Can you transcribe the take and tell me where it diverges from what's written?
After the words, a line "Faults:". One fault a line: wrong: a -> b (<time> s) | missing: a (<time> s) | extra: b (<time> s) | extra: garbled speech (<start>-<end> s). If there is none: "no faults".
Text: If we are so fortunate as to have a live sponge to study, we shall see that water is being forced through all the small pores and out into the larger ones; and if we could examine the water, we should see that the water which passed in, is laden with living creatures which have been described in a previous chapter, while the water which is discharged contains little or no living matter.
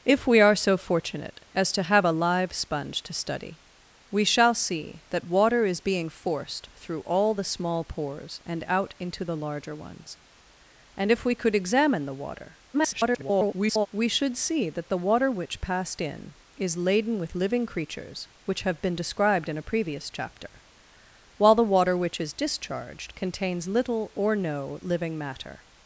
If we are so fortunate as to have a live sponge to study, we shall see that water is being forced through all the small pores and out into the larger ones; and if we could examine the water, [garbled] we should see that the water which passed in, is laden with living creatures which have been described in a previous chapter, while the water which is discharged contains little or no living matter.
Faults:
extra: garbled speech (12.7-13.9 s)